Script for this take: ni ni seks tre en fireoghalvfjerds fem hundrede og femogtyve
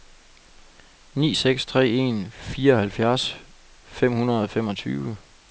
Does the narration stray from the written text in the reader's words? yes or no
yes